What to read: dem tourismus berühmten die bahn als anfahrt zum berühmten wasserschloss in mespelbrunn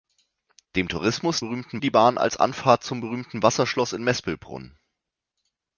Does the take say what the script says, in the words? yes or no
yes